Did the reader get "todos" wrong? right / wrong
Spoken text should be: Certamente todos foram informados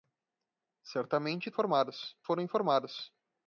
wrong